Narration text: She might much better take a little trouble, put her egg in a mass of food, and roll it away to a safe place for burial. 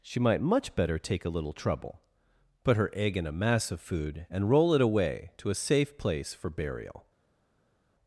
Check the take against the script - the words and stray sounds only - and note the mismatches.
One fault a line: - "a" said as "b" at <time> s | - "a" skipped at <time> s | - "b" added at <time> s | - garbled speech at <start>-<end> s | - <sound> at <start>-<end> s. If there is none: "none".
none